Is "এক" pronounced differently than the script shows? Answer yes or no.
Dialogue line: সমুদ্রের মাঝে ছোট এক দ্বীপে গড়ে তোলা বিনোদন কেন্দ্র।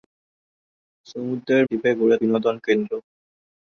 yes